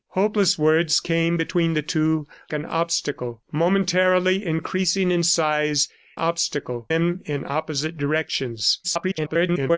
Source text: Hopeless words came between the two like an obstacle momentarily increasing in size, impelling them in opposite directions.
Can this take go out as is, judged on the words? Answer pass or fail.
fail